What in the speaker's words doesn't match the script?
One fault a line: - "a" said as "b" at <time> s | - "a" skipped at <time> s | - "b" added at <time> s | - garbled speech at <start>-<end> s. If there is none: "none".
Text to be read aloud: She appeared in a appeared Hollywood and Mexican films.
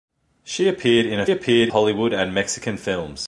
none